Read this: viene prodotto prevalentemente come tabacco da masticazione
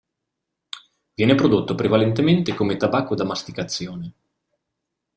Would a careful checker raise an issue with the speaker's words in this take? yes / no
no